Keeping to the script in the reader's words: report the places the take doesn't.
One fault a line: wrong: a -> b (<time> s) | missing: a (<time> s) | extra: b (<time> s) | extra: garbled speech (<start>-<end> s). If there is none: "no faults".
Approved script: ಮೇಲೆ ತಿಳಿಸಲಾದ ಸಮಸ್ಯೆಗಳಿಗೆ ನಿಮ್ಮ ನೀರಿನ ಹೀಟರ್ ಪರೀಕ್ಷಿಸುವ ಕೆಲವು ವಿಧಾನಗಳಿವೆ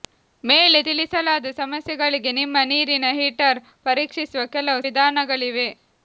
no faults